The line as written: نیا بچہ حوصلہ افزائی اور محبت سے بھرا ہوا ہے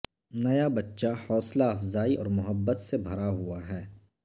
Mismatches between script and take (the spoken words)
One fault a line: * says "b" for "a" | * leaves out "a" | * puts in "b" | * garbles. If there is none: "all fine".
all fine